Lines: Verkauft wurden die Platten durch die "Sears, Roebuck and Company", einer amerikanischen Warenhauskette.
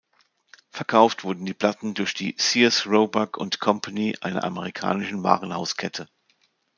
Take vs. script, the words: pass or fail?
pass